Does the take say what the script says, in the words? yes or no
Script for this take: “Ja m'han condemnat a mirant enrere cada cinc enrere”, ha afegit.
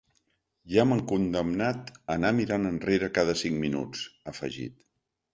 no